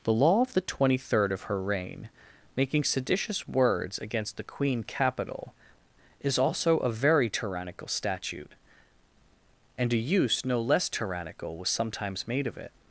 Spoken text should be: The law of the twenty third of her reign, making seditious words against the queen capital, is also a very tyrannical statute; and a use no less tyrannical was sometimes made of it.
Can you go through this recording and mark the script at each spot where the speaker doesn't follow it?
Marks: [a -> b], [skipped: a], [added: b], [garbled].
The law of the twenty third of her reign, making seditious words against the queen capital, is also a very tyrannical statute; and a use no less tyrannical was sometimes made of it.